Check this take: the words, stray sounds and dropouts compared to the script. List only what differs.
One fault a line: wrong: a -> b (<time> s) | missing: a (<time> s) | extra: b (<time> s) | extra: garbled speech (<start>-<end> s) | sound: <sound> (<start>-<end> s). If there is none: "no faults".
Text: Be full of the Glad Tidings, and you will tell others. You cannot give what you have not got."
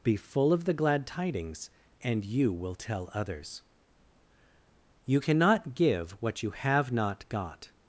no faults